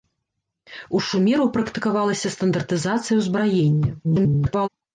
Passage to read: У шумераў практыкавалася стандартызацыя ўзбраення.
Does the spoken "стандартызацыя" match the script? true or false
true